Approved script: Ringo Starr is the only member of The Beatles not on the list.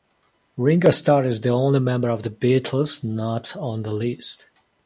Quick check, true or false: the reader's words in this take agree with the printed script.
true